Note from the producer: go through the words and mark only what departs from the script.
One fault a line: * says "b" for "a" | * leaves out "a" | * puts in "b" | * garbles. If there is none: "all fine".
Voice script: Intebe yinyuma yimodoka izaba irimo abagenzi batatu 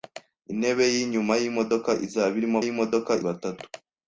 * says "yimodoka" for "abagenzi"